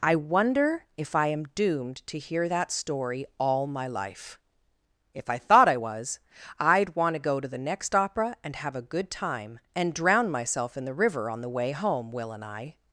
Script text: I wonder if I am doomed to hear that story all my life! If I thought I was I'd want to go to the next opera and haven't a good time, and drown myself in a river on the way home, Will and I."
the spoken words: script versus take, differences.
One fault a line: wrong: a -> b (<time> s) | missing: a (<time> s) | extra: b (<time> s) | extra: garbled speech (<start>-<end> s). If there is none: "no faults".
wrong: haven't -> have (8.6 s)
wrong: a -> the (10.8 s)